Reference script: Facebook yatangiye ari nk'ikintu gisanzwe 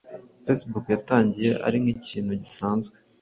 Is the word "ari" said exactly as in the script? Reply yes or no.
yes